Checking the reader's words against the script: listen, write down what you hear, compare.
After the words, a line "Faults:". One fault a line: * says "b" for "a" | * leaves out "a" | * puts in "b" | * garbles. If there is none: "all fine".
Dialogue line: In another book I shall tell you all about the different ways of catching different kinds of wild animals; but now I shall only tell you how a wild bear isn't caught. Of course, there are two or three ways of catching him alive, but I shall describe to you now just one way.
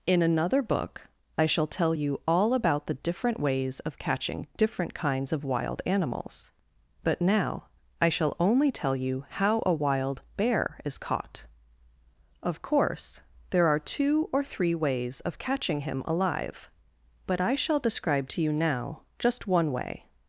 In another book I shall tell you all about the different ways of catching different kinds of wild animals; but now I shall only tell you how a wild bear is caught. Of course, there are two or three ways of catching him alive, but I shall describe to you now just one way.
Faults:
* says "is" for "isn't"